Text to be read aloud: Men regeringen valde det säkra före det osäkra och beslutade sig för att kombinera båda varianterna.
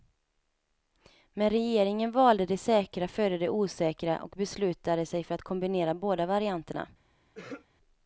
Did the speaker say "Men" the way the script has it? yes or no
yes